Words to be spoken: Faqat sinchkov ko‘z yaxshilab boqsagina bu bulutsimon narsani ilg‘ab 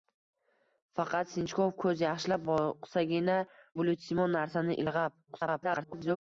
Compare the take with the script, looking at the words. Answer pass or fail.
fail